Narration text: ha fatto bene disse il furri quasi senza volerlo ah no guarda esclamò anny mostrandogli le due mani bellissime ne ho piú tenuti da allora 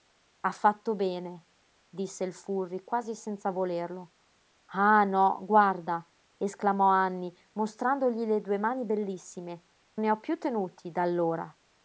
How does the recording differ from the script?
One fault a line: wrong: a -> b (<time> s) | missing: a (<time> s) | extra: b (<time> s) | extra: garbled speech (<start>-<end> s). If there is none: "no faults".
no faults